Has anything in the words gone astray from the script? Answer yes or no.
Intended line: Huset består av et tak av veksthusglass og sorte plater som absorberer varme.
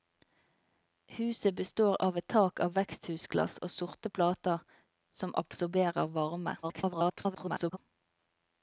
yes